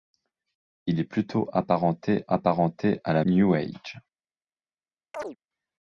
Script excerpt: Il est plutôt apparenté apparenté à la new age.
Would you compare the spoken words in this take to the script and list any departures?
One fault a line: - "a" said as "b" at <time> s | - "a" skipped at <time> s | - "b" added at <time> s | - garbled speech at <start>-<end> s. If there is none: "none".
none